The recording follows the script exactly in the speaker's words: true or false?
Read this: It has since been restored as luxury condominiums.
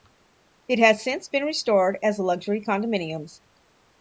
true